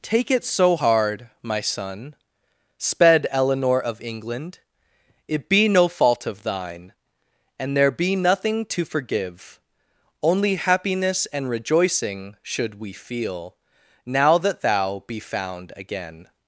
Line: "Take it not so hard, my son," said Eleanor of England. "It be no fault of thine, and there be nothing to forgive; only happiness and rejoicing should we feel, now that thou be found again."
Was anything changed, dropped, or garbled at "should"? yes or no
no